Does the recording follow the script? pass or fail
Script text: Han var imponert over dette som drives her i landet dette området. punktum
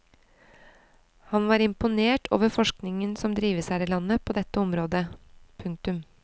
fail